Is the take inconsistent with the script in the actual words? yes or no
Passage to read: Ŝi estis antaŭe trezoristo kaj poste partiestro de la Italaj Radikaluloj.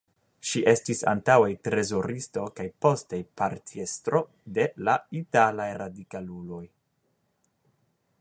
no